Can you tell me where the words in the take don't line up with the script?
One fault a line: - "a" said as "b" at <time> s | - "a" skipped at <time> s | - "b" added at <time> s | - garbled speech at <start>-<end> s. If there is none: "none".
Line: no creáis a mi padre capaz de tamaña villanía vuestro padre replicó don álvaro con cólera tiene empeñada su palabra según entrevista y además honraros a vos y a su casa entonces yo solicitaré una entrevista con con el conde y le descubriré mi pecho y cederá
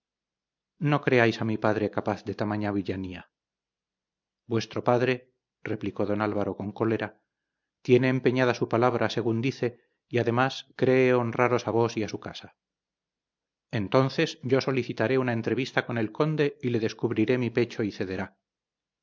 - "entrevista" said as "dice" at 9.4 s
- "cree" added at 10.8 s
- "con" skipped at 16.0 s